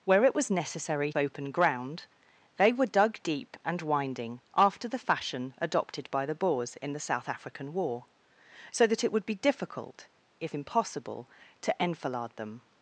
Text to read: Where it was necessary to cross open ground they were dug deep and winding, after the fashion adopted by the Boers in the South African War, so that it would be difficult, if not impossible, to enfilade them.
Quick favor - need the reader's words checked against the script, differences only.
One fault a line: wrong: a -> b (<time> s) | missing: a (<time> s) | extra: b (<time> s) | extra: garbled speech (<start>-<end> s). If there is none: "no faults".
missing: to cross (1.1 s)
missing: not (10.6 s)